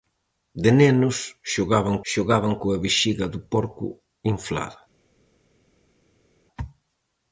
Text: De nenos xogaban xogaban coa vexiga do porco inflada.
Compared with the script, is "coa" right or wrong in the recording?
right